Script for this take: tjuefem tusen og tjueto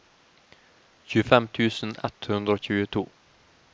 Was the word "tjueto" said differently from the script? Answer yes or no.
no